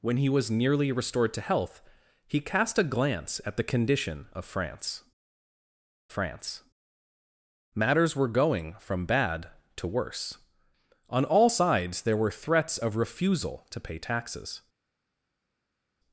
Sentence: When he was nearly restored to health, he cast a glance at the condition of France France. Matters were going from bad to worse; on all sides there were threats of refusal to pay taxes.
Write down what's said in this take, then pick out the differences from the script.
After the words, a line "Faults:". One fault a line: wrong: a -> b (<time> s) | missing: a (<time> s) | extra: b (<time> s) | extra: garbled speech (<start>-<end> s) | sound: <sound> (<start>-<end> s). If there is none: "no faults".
When he was nearly restored to health, he cast a glance at the condition of France France. Matters were going from bad to worse; on all sides there were threats of refusal to pay taxes.
Faults:
no faults